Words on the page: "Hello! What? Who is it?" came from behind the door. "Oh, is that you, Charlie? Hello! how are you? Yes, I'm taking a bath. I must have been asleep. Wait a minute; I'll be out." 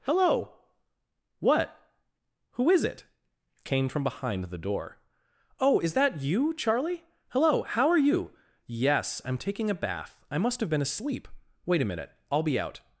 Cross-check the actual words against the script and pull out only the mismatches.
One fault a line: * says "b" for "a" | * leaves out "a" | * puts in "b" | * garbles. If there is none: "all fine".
all fine